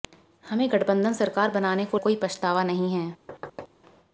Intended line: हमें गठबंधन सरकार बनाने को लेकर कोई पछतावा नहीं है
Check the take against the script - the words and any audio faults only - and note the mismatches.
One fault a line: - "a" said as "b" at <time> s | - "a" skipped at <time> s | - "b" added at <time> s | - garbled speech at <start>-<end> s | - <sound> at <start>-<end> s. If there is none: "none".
- "लेकर" skipped at 2.0 s
- thud at 3.3-3.7 s